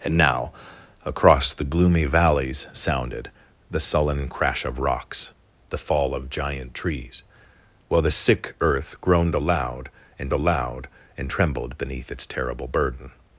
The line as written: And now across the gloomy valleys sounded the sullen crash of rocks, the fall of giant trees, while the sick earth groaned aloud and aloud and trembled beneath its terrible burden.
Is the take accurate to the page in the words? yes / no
yes